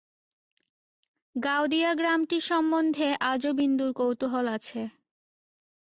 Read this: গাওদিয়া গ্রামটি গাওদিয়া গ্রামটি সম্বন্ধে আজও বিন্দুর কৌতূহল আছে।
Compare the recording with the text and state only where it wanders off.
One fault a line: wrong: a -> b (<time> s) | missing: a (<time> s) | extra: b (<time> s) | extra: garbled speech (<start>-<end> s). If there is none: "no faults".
missing: গাওদিয়া গ্রামটি (2.4 s)